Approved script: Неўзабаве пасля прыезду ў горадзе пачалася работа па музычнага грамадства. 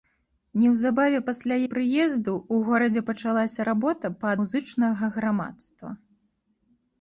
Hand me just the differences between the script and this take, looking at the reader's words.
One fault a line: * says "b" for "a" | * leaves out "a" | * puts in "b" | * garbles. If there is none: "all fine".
all fine